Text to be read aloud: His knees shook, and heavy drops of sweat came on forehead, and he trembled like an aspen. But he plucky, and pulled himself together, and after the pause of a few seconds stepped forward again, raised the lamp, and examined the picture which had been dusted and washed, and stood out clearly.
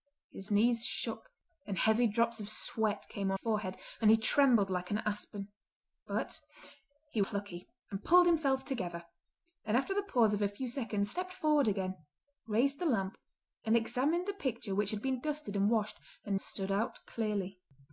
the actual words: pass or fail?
pass